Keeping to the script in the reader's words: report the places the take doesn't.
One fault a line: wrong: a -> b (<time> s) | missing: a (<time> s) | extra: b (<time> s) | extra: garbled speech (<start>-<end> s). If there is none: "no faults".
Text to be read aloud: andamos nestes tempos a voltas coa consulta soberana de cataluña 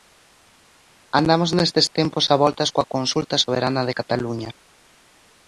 no faults